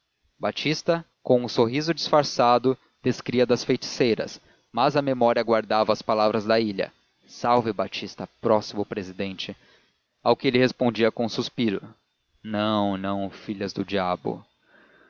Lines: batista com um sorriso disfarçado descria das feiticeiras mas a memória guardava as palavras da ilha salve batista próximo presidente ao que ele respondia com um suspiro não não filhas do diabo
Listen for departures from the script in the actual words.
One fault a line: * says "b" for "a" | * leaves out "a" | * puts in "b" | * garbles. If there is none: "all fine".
all fine